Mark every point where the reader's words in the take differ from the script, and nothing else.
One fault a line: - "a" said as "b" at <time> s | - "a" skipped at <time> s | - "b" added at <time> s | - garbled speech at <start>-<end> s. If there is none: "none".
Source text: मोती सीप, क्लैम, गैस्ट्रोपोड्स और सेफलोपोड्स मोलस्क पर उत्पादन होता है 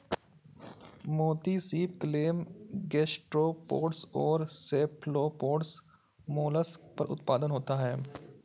none